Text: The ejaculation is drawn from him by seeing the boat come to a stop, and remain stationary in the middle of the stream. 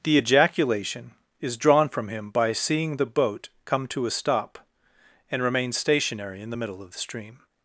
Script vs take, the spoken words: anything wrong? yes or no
no